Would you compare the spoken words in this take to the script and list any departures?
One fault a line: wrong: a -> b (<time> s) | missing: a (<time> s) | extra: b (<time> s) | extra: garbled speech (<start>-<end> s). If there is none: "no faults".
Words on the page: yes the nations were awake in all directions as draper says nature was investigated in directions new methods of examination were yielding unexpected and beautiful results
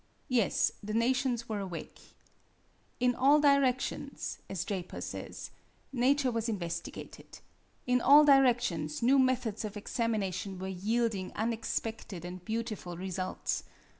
extra: all (8.0 s)